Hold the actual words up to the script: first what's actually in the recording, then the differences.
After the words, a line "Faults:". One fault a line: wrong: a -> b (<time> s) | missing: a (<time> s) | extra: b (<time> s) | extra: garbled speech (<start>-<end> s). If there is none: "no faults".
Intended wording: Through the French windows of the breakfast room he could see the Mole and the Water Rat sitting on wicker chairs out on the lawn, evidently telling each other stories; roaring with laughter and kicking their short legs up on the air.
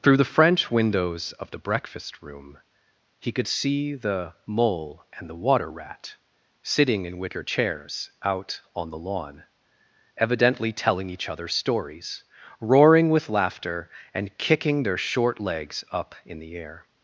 Through the French windows of the breakfast room he could see the Mole and the Water Rat sitting in wicker chairs out on the lawn, evidently telling each other stories; roaring with laughter and kicking their short legs up in the air.
Faults:
wrong: on -> in (7.0 s)
wrong: on -> in (16.2 s)